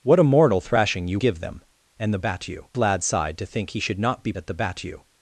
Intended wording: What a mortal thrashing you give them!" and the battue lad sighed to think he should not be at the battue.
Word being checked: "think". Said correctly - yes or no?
yes